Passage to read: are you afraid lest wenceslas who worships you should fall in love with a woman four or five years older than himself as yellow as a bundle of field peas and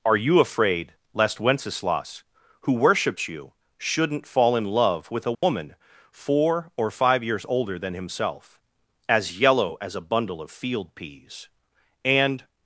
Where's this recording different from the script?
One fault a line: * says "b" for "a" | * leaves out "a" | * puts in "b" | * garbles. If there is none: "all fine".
* says "shouldn't" for "should"